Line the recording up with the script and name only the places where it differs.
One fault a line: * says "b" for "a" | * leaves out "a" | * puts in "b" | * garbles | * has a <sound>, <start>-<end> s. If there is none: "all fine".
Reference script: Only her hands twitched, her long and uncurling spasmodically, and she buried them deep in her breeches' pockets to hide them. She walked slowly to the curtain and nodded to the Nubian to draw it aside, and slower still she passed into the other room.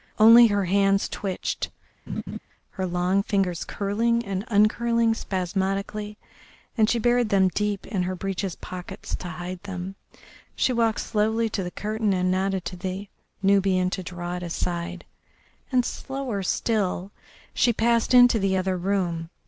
* has a laugh, 2.1-2.4 s
* puts in "fingers curling"